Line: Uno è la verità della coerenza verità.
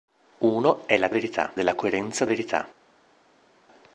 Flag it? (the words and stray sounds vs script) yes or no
no